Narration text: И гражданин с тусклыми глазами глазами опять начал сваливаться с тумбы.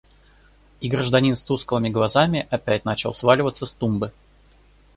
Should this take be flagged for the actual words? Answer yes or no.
yes